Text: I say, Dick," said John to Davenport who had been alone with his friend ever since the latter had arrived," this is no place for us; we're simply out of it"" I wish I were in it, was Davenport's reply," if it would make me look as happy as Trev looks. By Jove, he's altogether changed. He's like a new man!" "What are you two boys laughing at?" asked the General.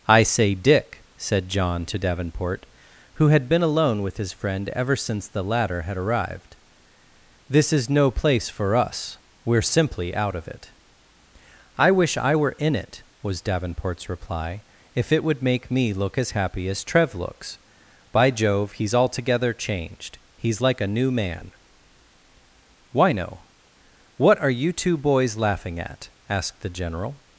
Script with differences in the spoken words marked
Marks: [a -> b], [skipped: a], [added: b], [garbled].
I say, Dick," said John to Davenport who had been alone with his friend ever since the latter had arrived," this is no place for us; we're simply out of it"" I wish I were in it, was Davenport's reply," if it would make me look as happy as Trev looks. By Jove, he's altogether changed. He's like a new man!" [added: why no] "What are you two boys laughing at?" asked the General.